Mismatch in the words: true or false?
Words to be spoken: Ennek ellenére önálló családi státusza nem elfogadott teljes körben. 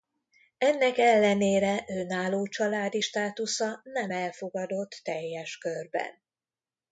false